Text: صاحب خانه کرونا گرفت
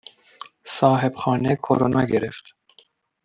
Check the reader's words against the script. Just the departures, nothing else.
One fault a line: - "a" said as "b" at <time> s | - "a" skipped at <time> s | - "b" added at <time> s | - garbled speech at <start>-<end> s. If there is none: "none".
none